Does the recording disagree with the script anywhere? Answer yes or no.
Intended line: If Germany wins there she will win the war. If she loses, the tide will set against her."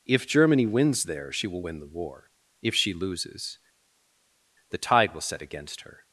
no